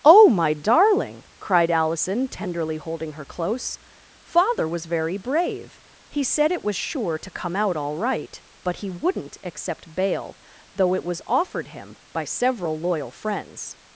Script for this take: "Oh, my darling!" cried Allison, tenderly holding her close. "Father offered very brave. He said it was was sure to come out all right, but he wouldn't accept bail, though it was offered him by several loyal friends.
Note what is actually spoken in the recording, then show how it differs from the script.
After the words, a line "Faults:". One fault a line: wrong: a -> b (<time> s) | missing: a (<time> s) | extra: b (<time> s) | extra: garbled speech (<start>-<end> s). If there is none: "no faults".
"Oh, my darling!" cried Allison, tenderly holding her close. "Father was very brave. He said it was sure to come out all right, but he wouldn't accept bail, though it was offered him by several loyal friends.
Faults:
wrong: offered -> was (4.7 s)
missing: was (6.8 s)